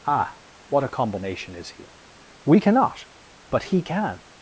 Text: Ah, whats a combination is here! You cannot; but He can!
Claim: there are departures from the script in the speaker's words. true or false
true